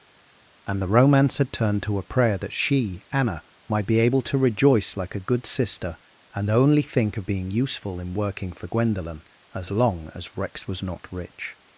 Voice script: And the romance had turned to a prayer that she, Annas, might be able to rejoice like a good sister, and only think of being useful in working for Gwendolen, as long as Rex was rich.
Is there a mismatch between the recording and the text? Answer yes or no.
yes